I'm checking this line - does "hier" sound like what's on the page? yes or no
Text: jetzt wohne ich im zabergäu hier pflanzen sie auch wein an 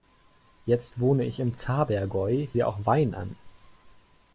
no